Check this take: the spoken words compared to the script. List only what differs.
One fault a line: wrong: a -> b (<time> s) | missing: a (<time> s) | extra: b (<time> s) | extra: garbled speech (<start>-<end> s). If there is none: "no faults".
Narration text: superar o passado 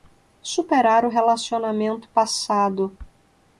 extra: relacionamento (1.1 s)